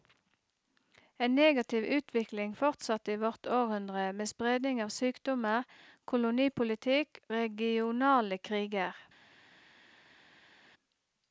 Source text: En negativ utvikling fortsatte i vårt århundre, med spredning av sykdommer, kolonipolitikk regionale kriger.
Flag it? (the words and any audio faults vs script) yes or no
no